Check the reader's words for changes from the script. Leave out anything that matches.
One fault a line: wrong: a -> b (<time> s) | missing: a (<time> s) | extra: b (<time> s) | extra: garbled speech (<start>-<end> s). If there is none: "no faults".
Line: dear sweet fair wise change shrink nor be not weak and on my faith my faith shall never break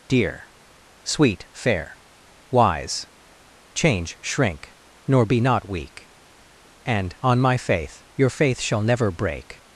wrong: my -> your (8.1 s)